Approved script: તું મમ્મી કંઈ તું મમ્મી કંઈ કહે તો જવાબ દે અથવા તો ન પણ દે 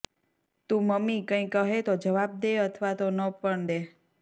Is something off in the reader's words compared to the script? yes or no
yes